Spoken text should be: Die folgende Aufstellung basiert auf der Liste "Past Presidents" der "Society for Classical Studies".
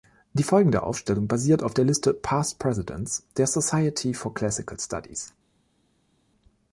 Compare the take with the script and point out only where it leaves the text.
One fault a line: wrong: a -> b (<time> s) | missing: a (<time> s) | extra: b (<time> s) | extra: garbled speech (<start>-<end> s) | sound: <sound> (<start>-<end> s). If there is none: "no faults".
no faults